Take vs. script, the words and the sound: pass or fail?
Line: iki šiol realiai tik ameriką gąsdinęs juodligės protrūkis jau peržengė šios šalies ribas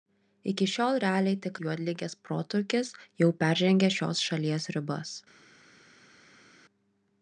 fail